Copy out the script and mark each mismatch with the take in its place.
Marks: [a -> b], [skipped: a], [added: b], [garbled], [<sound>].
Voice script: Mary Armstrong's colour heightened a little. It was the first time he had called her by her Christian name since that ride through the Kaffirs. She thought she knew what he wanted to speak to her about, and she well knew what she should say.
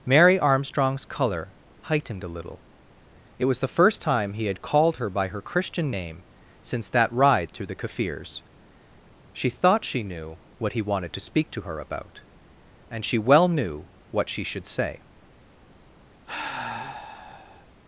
Mary Armstrong's colour heightened a little. It was the first time he had called her by her Christian name since that ride through the Kaffirs. She thought she knew what he wanted to speak to her about, and she well knew what she should say. [sigh]